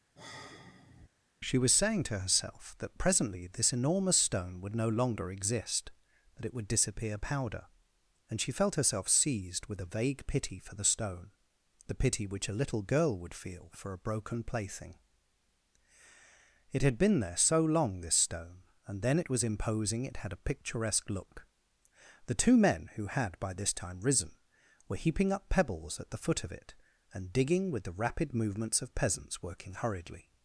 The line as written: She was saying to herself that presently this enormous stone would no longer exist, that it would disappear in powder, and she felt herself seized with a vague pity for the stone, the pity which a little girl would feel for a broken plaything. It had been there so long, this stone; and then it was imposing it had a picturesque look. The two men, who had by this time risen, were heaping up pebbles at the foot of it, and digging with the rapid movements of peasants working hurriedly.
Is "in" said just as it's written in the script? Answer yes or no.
no